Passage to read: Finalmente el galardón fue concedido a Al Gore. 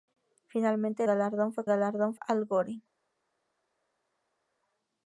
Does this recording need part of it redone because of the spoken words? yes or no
yes